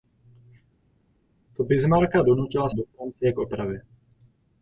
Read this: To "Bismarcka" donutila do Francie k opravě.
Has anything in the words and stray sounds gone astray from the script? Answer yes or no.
no